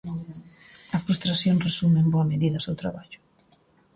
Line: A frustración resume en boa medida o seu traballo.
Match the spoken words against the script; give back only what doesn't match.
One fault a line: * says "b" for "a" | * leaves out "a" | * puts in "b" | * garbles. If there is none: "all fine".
all fine